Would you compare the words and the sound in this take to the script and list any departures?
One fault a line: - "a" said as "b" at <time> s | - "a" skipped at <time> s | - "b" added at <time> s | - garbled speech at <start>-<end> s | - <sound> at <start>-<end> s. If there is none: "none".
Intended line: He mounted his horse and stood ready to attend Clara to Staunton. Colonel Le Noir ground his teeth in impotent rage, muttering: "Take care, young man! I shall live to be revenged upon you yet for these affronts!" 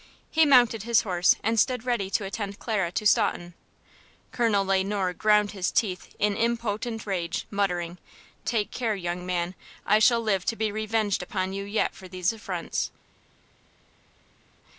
none